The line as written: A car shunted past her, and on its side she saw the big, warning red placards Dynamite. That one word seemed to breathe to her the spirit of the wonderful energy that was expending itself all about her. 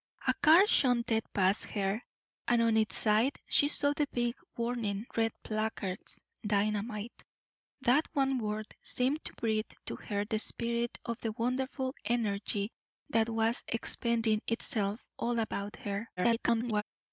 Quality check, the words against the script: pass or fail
fail